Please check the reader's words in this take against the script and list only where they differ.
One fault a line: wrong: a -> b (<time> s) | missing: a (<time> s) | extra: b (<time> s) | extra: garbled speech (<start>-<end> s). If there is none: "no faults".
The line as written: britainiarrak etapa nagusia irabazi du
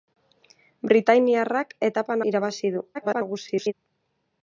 missing: nagusia (2.2 s)
extra: garbled speech (2.9-3.7 s)